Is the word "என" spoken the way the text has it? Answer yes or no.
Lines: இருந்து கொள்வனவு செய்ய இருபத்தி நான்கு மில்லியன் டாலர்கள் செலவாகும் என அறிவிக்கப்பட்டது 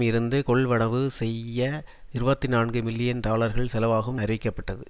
no